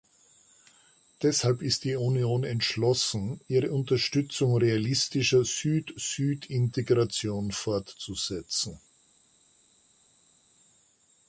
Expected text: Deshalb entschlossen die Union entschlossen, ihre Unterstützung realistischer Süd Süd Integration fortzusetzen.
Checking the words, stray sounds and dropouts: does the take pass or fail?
fail